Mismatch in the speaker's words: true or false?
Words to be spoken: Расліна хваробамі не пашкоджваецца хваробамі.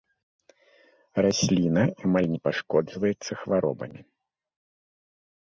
true